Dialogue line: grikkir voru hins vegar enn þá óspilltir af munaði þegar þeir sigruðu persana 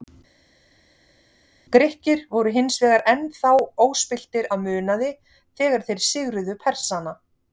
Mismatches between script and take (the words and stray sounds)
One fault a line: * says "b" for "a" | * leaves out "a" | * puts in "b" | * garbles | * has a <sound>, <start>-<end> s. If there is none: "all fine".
all fine